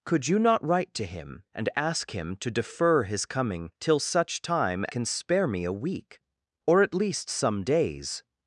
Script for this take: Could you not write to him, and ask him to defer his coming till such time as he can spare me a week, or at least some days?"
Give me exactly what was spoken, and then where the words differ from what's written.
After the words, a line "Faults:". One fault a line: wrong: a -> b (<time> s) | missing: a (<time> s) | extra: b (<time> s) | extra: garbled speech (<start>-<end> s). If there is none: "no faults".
Could you not write to him, and ask him to defer his coming till such time can spare me a week, or at least some days?"
Faults:
missing: as he (4.8 s)